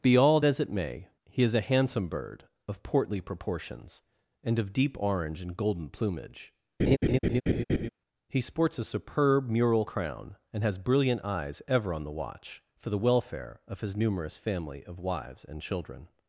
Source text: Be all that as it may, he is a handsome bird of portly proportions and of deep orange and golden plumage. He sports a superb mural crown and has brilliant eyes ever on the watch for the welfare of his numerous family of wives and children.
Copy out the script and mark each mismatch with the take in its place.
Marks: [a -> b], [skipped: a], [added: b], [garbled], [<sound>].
Be all [skipped: that] as it may, he is a handsome bird of portly proportions and of deep orange and golden plumage. [laugh] He sports a superb mural crown and has brilliant eyes ever on the watch for the welfare of his numerous family of wives and children.